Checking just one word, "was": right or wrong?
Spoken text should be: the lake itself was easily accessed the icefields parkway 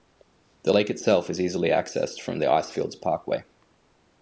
wrong